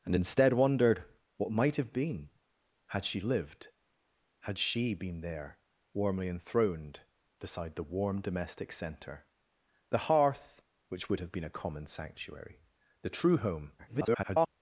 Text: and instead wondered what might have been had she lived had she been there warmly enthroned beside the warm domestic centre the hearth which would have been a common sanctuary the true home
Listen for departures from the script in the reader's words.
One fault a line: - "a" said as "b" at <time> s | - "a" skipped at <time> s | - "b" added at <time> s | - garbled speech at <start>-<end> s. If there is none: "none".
- garbled speech at 13.8-14.5 s